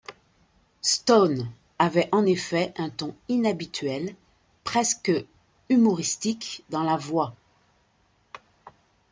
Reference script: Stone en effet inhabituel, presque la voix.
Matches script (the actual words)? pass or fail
fail